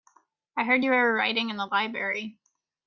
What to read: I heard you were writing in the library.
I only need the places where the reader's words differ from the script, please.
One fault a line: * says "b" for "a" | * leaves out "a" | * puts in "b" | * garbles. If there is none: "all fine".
all fine